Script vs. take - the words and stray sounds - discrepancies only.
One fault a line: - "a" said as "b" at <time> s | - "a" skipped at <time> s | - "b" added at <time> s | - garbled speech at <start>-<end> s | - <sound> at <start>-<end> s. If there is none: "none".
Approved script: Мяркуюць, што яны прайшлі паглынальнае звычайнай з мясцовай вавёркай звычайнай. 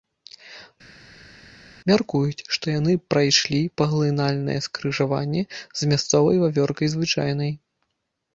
- "звычайнай" said as "скрыжаванне" at 4.7 s